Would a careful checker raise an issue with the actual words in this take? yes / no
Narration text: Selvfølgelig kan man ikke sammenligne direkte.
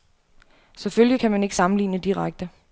no